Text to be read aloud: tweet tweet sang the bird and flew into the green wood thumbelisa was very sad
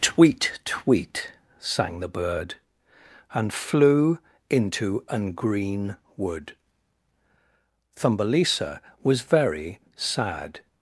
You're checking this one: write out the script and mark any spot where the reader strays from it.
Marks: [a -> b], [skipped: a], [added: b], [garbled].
tweet tweet sang the bird and flew into [the -> an] green wood thumbelisa was very sad